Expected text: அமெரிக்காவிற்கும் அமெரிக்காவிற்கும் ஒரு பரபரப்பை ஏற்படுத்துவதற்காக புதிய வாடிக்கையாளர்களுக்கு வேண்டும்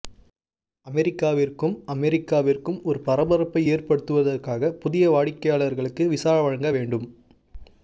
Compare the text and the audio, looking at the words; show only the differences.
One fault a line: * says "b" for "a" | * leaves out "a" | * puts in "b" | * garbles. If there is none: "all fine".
* puts in "விசா வழங்க"